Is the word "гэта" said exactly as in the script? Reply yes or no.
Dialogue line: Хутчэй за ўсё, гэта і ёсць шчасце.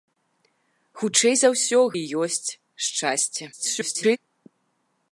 no